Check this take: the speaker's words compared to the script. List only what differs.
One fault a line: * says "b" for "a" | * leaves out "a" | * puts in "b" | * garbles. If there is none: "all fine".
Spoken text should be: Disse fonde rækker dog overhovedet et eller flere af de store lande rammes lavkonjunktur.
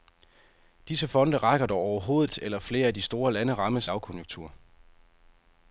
all fine